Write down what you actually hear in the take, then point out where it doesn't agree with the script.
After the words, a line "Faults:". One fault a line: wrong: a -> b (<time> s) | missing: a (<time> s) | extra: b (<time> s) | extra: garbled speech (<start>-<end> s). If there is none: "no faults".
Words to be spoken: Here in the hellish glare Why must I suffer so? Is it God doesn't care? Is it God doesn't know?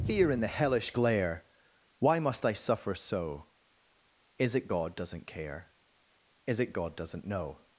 Here in the hellish glare Why must I suffer so? Is it God doesn't care? Is it God doesn't know?
Faults:
no faults